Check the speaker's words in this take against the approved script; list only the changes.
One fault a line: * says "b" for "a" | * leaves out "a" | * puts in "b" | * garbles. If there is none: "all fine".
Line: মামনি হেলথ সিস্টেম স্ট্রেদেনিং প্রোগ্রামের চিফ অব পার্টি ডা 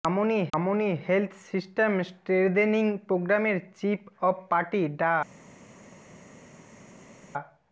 * puts in "মামনি"